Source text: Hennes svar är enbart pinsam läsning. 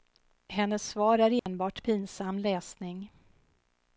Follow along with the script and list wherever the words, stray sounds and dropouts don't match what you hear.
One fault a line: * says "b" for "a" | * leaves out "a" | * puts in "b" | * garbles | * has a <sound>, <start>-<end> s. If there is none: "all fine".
* has a dropout, 1.4-1.5 s